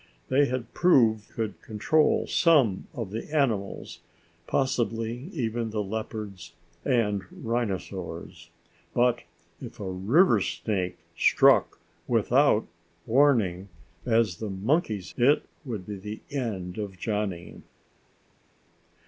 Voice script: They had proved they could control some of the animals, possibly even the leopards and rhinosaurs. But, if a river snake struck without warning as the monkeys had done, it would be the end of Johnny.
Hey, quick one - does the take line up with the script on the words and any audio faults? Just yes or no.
no